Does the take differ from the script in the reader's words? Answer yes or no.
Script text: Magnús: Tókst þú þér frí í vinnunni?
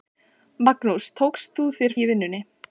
yes